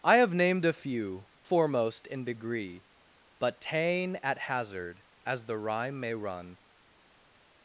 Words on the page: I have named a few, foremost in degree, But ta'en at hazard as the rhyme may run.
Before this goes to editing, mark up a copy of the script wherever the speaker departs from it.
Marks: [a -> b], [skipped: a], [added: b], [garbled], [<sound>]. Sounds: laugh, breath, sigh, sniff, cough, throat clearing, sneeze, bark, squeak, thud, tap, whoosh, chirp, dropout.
I have named a few, foremost in degree, But ta'en at hazard as the rhyme may run.